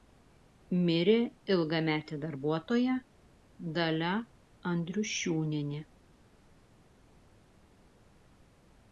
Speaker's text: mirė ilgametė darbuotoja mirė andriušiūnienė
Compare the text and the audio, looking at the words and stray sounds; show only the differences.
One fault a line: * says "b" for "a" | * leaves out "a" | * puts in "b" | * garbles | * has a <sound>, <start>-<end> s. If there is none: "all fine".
* says "dalia" for "mirė"